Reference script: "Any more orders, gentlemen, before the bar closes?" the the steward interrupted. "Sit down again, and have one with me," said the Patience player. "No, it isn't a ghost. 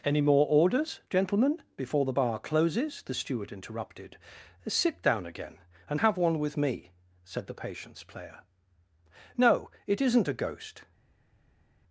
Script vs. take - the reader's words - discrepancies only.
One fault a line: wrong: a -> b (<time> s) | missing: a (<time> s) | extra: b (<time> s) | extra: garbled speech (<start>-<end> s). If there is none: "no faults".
missing: the (3.1 s)